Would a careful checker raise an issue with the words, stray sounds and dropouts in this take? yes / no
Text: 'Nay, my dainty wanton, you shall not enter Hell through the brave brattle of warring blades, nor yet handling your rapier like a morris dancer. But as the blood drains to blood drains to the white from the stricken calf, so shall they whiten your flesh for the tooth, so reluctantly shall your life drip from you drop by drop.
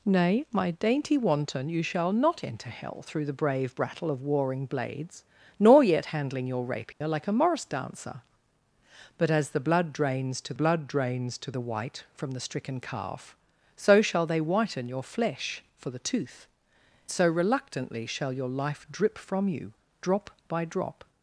yes